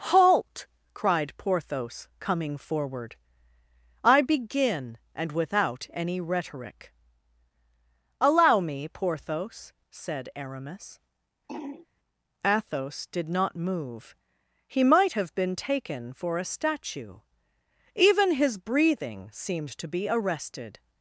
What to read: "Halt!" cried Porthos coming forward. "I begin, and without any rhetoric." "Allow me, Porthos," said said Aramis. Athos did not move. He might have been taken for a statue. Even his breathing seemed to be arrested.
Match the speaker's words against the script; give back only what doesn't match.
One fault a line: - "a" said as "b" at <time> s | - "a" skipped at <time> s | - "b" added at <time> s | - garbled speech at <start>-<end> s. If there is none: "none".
- "said" skipped at 10.3 s